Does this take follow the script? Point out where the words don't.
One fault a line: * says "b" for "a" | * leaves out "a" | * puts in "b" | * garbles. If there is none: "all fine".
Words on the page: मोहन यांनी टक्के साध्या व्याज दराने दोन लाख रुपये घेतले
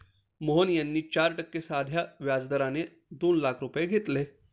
* puts in "चार"